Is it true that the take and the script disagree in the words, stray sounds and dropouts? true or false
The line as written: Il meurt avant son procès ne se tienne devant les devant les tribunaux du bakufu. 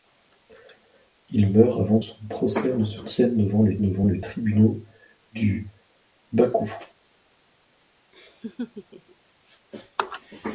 true